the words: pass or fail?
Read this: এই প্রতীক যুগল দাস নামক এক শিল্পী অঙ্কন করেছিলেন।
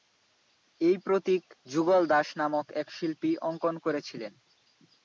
pass